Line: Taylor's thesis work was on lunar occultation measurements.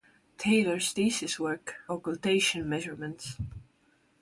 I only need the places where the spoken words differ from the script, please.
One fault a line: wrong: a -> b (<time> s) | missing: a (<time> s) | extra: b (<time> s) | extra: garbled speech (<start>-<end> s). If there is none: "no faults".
missing: was on lunar (1.7 s)